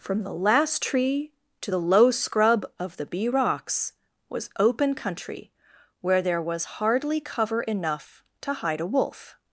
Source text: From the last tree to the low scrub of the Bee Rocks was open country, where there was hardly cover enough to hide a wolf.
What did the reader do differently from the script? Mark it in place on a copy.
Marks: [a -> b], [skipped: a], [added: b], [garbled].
From the last tree to the low scrub of the Bee Rocks was open country, where there was hardly cover enough to hide a wolf.